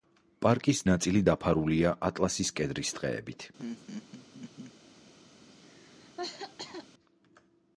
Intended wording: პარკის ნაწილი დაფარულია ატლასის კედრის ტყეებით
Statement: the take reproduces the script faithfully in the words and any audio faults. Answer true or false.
false